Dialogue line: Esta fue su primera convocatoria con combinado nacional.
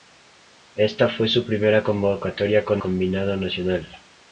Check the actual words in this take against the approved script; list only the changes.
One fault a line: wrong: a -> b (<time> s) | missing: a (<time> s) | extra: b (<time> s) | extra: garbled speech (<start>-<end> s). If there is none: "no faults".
no faults